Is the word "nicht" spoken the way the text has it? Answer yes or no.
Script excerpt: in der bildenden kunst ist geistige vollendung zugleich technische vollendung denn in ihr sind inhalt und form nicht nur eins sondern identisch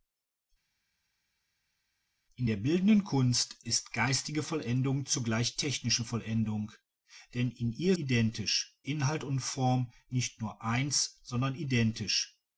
yes